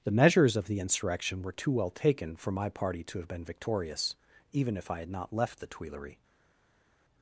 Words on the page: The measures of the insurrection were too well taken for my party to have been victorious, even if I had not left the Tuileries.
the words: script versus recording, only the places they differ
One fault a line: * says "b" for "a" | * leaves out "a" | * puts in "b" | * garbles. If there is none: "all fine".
all fine